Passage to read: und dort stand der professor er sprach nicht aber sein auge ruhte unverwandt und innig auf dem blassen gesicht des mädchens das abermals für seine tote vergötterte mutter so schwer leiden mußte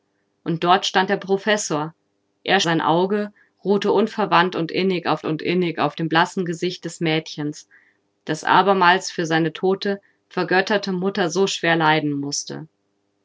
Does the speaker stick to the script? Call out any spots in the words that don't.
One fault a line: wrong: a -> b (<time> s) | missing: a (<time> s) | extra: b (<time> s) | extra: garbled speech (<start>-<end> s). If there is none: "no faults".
missing: sprach nicht aber (2.6 s)
extra: und innig auf (5.3 s)